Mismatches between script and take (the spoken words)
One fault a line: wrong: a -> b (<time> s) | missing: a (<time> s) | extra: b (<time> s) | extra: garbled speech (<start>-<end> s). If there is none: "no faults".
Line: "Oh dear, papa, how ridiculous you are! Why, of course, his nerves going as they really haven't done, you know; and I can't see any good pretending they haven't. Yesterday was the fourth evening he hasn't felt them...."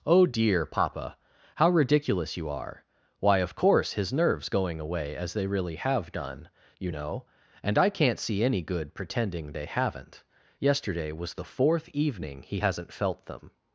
extra: away (4.8 s)
wrong: haven't -> have (5.8 s)